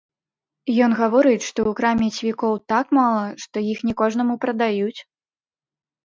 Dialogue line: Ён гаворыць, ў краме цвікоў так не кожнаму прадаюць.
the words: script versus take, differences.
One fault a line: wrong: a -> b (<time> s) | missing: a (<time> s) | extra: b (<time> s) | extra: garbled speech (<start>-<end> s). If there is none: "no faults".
extra: што (1.5 s)
extra: мала што іх (3.0 s)